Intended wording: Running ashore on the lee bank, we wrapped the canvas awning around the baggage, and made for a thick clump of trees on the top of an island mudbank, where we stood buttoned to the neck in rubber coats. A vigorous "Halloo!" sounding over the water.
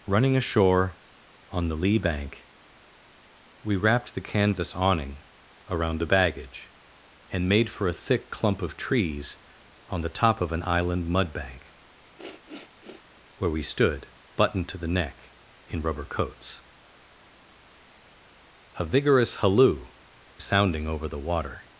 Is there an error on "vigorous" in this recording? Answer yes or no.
no